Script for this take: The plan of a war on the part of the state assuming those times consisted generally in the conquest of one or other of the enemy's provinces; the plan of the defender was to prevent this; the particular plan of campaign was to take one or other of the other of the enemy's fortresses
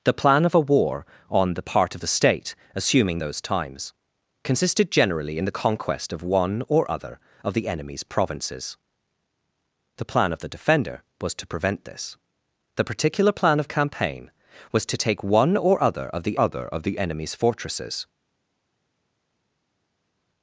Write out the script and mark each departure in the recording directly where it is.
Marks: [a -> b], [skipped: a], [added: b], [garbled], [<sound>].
The plan of a war on the part of the state assuming those times consisted generally in the conquest of one or other of the enemy's provinces; the plan of the defender was to prevent this; the particular plan of campaign was to take one or other of the other of the enemy's fortresses